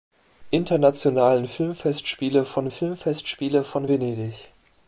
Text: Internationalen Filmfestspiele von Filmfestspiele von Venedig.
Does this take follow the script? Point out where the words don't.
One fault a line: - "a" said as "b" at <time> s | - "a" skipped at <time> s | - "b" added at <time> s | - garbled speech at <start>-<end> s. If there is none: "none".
none